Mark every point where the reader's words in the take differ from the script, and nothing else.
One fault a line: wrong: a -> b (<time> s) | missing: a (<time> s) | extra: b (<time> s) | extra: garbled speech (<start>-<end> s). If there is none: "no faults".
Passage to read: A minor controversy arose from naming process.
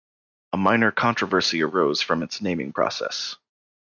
extra: its (2.2 s)